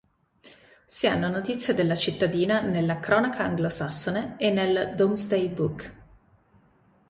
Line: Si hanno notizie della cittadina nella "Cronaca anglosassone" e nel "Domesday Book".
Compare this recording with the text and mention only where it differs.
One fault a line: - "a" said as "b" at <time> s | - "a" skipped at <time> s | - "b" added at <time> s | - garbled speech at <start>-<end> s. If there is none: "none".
none